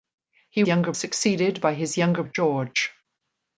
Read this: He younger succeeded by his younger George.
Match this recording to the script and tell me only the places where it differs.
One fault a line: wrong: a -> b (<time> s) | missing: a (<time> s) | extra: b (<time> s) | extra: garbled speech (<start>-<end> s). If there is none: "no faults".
no faults